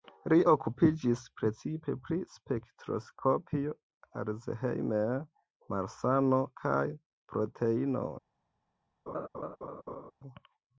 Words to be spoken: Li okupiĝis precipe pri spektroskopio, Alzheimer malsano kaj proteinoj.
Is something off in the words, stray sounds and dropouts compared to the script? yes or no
yes